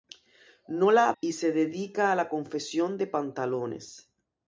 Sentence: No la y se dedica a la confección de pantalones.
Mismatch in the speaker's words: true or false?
false